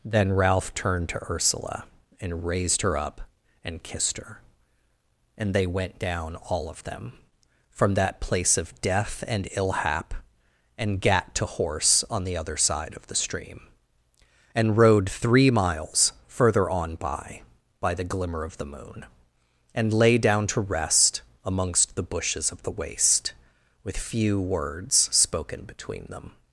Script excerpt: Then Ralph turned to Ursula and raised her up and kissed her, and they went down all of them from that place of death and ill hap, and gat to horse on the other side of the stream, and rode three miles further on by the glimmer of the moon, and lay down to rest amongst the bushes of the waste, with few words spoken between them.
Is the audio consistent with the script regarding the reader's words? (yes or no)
no